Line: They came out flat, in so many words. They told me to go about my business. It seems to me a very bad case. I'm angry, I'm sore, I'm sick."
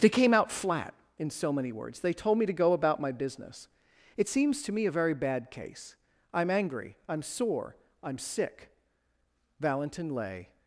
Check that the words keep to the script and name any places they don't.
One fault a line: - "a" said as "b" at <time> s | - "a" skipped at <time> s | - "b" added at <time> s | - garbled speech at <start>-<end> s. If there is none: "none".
- "Valentin lay" added at 9.6 s